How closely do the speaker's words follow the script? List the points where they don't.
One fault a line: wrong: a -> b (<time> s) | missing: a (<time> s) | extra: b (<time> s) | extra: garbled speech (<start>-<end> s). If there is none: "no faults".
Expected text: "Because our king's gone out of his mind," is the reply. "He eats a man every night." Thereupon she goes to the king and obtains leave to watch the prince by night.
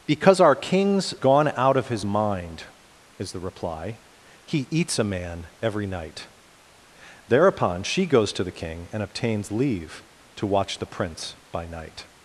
no faults